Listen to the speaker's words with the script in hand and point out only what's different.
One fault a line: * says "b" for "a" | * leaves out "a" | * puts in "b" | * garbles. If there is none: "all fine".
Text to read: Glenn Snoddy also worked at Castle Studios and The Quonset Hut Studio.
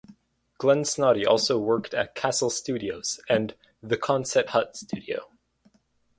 all fine